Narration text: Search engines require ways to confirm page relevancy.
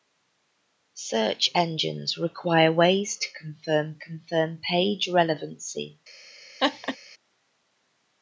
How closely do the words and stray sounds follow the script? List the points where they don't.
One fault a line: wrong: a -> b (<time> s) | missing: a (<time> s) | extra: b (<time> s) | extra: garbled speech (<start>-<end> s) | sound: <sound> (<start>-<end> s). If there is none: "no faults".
extra: confirm (4.0 s)
sound: laugh (6.6-7.0 s)